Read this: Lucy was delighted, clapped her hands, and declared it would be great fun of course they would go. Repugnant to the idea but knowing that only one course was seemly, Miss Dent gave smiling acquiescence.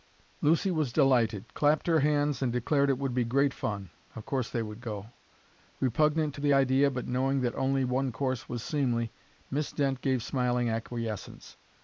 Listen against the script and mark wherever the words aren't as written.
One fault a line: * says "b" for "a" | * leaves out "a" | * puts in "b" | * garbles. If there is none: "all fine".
all fine